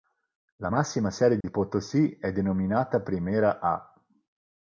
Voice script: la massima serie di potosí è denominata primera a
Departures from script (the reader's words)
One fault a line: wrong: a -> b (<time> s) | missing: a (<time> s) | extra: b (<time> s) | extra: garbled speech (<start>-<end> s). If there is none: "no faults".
no faults